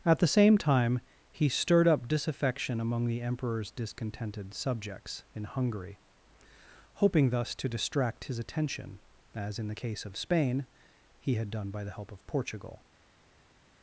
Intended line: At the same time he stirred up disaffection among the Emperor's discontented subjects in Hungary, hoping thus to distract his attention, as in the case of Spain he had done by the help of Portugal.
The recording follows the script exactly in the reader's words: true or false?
true